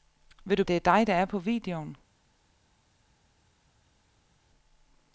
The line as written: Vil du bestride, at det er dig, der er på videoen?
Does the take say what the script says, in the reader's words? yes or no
no